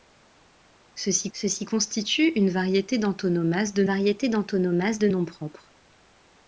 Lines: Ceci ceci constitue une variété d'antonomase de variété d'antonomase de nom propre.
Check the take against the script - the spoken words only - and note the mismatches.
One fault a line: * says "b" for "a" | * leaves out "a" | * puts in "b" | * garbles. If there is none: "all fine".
all fine